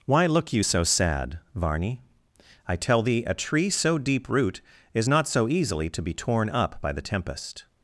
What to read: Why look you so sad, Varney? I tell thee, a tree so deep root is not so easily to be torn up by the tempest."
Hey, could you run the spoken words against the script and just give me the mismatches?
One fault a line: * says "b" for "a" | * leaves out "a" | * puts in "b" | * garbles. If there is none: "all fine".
all fine